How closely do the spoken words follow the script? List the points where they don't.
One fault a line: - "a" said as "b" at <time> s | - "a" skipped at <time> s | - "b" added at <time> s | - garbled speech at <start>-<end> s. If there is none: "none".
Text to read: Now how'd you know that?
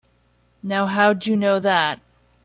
none